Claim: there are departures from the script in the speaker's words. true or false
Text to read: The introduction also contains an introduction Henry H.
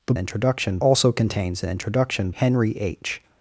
false